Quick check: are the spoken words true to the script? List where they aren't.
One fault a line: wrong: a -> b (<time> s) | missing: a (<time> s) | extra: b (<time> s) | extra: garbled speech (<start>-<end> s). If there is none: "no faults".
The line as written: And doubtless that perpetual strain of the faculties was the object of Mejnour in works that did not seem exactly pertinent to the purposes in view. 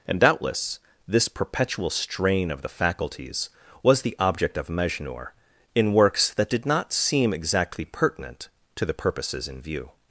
wrong: that -> this (1.1 s)